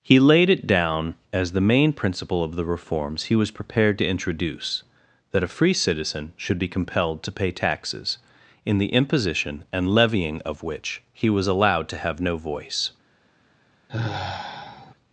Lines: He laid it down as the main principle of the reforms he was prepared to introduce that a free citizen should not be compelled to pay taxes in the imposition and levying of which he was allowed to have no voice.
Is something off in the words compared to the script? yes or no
yes